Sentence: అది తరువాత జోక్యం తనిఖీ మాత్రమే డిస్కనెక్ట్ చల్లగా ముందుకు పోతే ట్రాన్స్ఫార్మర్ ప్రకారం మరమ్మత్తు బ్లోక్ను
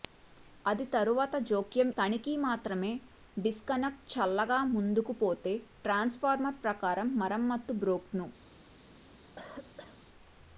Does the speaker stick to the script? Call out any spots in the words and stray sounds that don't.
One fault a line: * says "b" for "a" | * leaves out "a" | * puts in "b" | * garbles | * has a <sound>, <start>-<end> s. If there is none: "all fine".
* has a cough, 9.4-10.0 s